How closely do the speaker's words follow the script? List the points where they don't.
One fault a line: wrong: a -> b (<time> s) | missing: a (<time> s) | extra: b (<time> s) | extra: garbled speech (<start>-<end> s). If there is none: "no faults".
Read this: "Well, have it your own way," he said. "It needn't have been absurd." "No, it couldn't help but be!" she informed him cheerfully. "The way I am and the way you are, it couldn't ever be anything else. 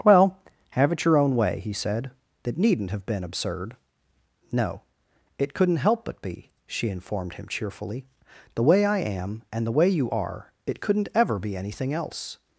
wrong: It -> That (2.4 s)